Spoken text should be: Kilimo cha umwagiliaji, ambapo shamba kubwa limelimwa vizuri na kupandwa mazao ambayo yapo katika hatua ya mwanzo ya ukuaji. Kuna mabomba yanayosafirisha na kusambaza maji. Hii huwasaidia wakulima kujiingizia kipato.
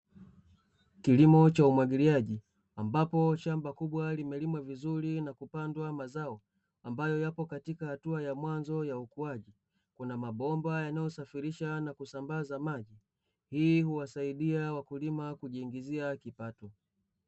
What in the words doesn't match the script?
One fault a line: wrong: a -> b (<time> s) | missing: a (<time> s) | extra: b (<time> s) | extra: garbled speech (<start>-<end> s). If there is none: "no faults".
no faults